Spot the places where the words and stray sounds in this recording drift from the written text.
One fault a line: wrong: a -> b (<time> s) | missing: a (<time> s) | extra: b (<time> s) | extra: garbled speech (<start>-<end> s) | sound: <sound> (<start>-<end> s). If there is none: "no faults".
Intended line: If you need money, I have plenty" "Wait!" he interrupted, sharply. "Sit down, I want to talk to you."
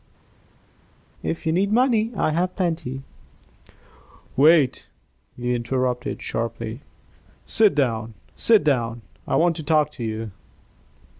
extra: sit down (8.3 s)